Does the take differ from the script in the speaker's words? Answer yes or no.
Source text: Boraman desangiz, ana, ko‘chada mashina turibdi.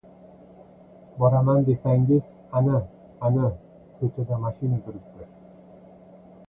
yes